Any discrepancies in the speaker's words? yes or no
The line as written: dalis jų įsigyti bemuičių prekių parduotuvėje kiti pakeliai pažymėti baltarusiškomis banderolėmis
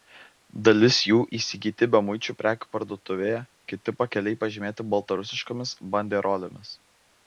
no